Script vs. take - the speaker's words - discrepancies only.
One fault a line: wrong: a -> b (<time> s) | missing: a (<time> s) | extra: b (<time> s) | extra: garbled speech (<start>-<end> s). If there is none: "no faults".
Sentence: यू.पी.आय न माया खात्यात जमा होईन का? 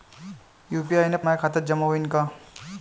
no faults